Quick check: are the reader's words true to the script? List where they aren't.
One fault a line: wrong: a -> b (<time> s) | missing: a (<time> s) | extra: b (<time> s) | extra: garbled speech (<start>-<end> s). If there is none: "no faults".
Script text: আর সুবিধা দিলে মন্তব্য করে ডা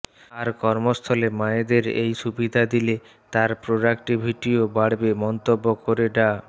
extra: কর্মস্থলে মায়েদের এই (0.6 s)
extra: তার প্রোডাক্টিভিটিও বাড়বে (3.3 s)